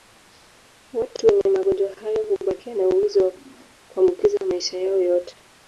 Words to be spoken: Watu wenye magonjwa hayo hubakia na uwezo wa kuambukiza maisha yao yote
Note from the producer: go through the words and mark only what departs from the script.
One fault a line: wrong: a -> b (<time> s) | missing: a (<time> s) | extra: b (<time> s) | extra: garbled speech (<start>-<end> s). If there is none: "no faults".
no faults